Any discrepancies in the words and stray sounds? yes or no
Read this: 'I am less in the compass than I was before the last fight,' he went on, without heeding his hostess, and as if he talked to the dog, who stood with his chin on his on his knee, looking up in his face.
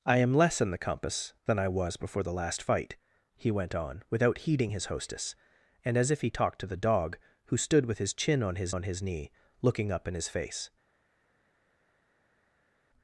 no